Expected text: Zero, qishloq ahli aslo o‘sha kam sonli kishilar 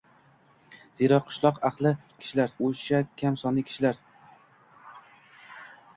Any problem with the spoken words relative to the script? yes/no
yes